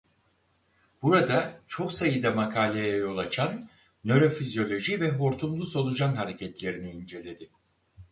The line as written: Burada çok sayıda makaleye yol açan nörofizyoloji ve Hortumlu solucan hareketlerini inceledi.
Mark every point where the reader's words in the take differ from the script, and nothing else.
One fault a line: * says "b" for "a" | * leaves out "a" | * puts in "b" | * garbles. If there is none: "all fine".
all fine